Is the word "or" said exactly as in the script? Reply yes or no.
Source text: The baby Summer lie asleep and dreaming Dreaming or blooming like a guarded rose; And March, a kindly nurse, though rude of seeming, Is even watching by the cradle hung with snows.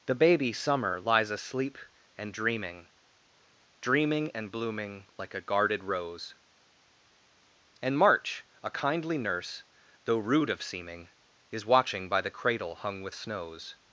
no